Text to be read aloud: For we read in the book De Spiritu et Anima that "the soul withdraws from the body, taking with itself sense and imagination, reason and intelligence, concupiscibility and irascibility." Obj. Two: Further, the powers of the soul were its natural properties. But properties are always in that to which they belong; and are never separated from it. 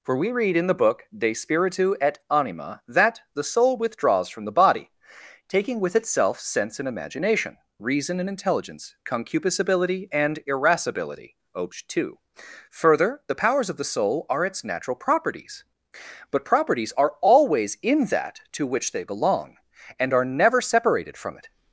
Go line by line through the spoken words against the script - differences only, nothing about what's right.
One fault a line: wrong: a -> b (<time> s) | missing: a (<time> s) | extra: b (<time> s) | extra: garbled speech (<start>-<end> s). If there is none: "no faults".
wrong: were -> are (14.3 s)